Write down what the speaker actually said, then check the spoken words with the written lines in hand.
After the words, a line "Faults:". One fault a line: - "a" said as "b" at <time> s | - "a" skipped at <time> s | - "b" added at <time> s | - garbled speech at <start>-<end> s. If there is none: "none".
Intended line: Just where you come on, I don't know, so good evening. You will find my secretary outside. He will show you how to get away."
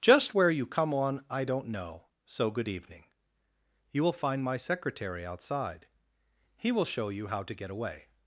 Just where you come on, I don't know, so good evening. You will find my secretary outside. He will show you how to get away."
Faults:
none